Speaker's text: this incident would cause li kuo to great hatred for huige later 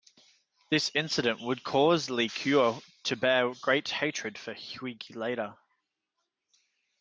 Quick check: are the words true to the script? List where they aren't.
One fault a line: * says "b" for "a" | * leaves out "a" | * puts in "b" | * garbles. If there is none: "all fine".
* puts in "bear"